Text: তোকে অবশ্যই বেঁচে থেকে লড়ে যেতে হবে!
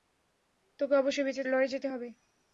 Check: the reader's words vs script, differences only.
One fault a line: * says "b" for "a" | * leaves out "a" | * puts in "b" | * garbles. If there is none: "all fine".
* leaves out "থেকে"